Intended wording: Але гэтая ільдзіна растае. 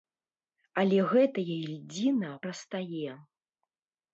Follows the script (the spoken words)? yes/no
yes